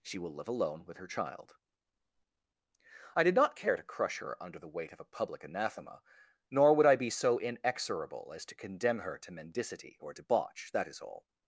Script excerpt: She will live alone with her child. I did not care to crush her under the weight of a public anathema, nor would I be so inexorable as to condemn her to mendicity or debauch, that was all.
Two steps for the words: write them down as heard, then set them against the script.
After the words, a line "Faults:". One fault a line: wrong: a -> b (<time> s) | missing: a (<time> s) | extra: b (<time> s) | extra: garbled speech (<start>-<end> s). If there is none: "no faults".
She will live alone with her child. I did not care to crush her under the weight of a public anathema, nor would I be so inexorable as to condemn her to mendicity or debauch, that is all.
Faults:
wrong: was -> is (10.9 s)